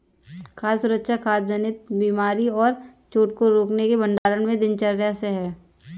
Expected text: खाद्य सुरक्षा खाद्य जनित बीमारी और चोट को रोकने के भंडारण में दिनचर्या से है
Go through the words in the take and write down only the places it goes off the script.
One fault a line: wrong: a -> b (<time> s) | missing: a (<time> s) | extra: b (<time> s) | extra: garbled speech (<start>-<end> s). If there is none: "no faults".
no faults